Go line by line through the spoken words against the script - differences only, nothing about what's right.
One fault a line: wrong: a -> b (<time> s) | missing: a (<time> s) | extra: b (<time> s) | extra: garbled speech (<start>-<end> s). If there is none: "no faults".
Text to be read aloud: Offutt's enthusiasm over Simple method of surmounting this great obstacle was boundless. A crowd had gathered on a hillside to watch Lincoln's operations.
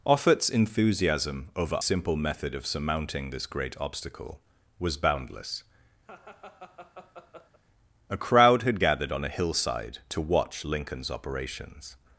no faults